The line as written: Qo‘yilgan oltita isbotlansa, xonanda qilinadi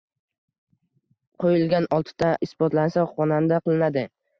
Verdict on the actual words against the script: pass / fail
pass